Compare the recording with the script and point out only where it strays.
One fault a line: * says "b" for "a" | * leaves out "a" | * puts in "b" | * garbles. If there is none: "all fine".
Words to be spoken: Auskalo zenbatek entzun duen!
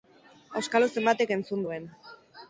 all fine